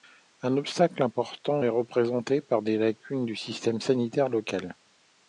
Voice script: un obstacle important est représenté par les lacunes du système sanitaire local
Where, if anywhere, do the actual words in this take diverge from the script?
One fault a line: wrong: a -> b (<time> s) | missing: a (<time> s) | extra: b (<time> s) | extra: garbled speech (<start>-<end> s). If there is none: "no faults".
no faults